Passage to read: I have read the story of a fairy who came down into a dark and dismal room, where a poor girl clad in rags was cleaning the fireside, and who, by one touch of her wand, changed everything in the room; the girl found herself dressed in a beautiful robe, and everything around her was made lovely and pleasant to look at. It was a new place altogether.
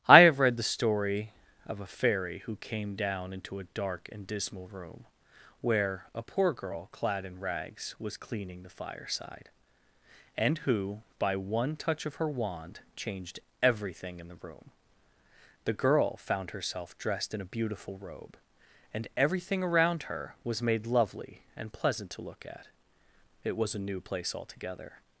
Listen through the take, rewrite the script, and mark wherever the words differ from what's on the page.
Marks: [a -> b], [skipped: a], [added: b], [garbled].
I have read the story of a fairy who came down into a dark and dismal room, where a poor girl clad in rags was cleaning the fireside, and who, by one touch of her wand, changed everything in the room; the girl found herself dressed in a beautiful robe, and everything around her was made lovely and pleasant to look at. It was a new place altogether.